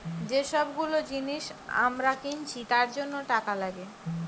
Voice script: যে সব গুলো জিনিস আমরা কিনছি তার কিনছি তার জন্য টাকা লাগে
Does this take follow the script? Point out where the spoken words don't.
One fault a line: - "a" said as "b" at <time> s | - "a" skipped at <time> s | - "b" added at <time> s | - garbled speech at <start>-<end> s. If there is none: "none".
- "কিনছি তার" skipped at 2.9 s